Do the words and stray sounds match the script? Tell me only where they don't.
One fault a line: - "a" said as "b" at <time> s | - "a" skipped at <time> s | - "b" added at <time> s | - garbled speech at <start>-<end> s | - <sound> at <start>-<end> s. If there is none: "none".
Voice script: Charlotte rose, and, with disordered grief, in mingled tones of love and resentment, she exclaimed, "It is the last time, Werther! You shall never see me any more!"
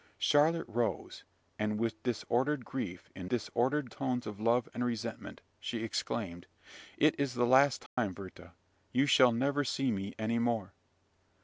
- "mingled" said as "disordered" at 3.3 s
- dropout at 7.9-8.0 s